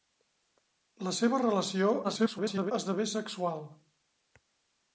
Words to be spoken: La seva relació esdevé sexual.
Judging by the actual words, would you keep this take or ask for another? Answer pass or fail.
fail